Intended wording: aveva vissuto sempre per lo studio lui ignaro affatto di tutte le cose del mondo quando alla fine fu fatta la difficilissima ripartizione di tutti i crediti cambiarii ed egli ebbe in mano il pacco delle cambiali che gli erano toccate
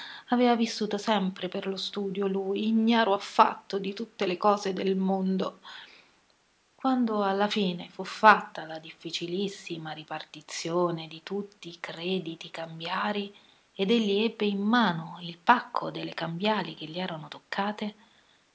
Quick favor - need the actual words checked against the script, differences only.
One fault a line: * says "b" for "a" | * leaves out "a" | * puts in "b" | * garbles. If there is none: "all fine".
all fine